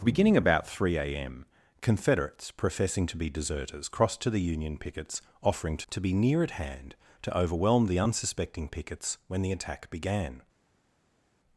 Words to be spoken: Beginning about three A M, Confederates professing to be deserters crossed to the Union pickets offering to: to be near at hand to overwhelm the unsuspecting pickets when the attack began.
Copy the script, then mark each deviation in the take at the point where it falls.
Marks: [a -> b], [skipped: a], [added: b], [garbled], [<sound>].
Beginning about three A M, Confederates professing to be deserters crossed to the Union pickets offering to: to be near at hand to overwhelm the unsuspecting pickets when the attack began.